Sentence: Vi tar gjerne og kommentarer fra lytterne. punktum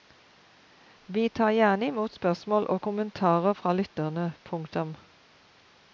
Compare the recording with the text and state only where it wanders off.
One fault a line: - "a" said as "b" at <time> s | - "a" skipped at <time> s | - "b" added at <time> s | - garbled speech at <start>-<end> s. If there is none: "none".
- "imot spørsmål" added at 1.9 s